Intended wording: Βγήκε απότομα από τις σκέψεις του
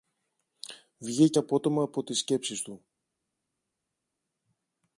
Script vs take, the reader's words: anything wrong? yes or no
no